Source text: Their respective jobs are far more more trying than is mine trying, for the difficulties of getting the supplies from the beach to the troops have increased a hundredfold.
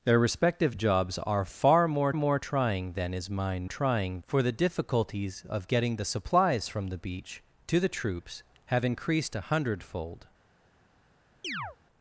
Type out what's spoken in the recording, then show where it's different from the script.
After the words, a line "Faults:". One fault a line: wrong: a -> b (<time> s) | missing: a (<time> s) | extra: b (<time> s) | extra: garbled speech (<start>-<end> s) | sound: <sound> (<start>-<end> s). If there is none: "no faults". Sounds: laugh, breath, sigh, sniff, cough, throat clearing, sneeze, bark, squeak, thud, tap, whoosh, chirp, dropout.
Their respective jobs are far more more trying than is mine trying, for the difficulties of getting the supplies from the beach to the troops have increased a hundredfold.
Faults:
sound: chirp (11.4-11.8 s)